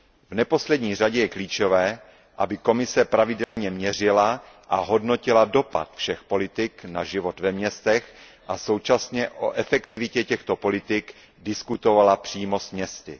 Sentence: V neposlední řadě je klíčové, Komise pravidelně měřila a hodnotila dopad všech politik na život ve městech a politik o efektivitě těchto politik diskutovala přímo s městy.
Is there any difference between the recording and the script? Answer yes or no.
yes